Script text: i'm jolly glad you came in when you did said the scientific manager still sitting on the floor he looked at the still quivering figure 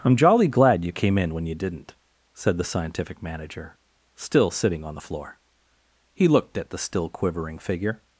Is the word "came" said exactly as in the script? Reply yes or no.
yes